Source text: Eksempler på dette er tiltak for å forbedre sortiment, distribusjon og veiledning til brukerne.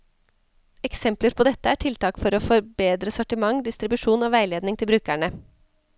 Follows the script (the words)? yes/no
yes